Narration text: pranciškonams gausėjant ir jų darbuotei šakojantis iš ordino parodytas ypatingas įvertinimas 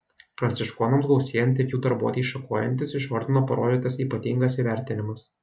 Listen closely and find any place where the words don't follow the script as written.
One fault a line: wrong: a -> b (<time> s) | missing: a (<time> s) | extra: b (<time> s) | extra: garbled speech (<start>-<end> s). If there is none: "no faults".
no faults